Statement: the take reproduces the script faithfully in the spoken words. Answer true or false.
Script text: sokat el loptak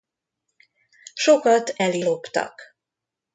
true